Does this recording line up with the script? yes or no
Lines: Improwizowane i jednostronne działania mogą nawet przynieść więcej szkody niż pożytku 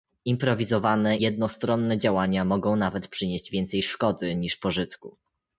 no